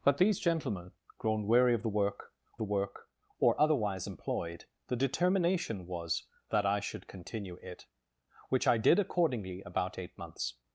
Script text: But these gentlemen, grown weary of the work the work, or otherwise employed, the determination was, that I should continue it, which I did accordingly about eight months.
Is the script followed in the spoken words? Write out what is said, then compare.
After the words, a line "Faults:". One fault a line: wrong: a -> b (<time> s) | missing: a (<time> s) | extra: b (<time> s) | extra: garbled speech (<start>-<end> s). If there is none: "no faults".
But these gentlemen, grown weary of the work the work, or otherwise employed, the determination was, that I should continue it, which I did accordingly about eight months.
Faults:
no faults